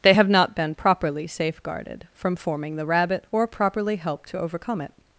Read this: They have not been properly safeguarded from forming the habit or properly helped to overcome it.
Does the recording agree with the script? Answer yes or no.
no